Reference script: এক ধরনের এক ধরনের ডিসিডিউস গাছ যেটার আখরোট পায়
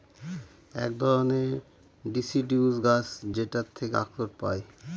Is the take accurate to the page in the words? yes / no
no